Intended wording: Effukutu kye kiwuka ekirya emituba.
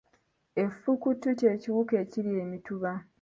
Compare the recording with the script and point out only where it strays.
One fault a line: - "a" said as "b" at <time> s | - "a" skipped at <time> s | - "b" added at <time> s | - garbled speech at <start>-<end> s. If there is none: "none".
none